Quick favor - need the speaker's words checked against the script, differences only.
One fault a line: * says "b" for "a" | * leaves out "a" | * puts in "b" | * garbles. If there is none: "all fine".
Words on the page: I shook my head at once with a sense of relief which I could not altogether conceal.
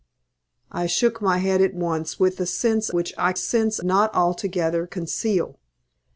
* leaves out "of relief"
* says "sense" for "could"